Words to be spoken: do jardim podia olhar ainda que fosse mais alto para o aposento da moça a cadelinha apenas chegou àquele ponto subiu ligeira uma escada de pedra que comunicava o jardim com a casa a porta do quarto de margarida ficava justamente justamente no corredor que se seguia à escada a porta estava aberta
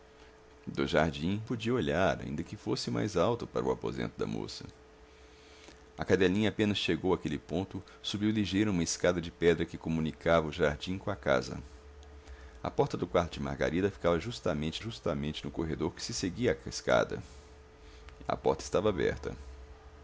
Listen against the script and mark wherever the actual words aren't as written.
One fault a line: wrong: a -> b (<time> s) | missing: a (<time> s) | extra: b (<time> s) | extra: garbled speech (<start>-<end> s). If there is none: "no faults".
no faults